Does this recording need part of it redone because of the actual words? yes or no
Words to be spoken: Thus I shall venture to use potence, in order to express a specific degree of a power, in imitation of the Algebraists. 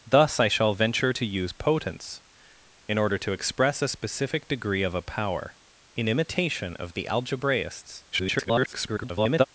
yes